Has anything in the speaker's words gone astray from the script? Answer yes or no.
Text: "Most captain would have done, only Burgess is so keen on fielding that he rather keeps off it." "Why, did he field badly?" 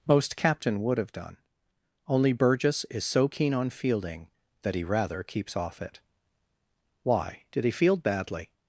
no